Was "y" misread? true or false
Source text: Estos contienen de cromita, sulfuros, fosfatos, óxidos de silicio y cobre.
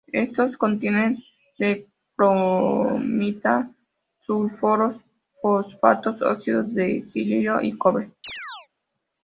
false